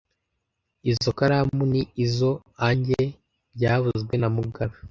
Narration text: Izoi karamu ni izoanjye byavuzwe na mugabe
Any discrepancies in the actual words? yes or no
no